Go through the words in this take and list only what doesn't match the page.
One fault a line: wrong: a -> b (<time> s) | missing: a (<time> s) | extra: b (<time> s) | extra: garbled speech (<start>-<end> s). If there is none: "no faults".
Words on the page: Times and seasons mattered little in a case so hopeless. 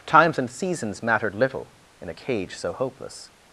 wrong: case -> cage (2.1 s)